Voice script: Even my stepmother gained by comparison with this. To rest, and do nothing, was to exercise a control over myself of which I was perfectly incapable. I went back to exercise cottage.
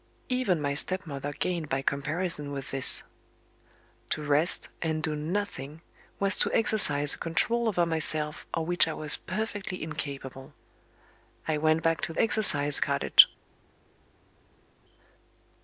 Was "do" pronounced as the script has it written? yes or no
yes